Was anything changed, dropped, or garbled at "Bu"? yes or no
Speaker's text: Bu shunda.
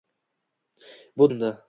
no